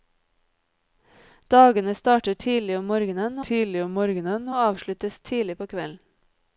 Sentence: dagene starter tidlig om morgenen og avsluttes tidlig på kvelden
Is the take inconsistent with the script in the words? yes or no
yes